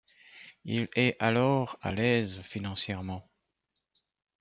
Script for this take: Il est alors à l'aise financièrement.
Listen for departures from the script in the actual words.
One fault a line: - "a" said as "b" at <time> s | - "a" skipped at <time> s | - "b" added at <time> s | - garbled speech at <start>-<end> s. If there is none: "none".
none